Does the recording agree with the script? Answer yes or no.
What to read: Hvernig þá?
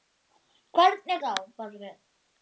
yes